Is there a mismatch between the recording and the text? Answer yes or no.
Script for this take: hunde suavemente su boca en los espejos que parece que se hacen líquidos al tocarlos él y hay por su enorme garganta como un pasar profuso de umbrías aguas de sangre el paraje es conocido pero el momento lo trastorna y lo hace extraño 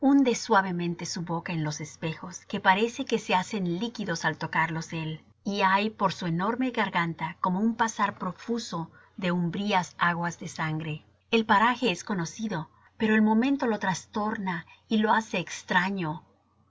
no